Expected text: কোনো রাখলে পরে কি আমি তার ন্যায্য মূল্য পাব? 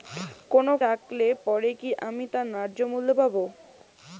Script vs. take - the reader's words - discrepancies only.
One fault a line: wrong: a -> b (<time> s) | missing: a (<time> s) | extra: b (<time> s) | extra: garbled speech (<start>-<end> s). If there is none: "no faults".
no faults